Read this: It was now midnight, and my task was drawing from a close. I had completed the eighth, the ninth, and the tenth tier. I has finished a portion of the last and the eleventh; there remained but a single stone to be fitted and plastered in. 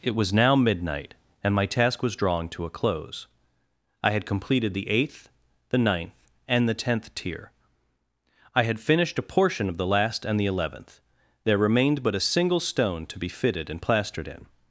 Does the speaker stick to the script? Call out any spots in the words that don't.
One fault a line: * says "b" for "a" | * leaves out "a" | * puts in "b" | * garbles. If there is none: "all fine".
* says "to" for "from"
* says "had" for "has"